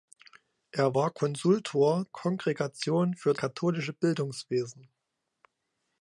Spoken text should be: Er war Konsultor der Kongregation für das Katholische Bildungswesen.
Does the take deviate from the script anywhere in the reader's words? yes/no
yes